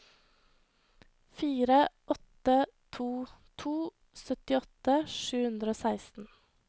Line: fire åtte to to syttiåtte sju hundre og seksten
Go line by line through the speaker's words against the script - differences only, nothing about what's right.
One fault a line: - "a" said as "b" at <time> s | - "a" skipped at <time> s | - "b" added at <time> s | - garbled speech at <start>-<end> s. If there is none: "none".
none